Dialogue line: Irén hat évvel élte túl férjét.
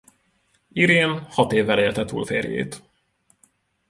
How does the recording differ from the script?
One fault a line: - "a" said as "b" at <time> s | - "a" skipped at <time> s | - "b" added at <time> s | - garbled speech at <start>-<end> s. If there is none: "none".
none